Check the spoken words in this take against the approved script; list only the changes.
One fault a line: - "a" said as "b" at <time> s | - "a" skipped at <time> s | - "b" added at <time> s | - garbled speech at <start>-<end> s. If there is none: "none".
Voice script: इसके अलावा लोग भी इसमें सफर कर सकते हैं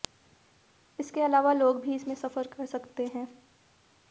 none